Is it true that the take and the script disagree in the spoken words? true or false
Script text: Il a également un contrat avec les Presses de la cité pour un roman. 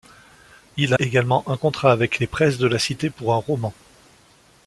true